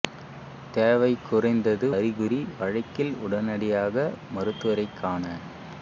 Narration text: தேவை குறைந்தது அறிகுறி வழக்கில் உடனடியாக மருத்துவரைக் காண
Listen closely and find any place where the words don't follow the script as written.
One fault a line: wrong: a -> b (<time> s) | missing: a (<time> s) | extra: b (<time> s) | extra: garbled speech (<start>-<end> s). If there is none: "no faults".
no faults